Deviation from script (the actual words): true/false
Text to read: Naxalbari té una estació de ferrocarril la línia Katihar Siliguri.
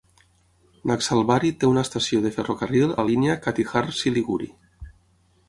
false